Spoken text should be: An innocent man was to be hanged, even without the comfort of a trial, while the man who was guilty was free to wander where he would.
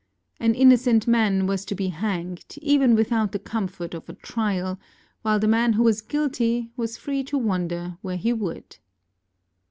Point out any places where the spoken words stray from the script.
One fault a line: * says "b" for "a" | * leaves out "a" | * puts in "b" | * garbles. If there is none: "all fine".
all fine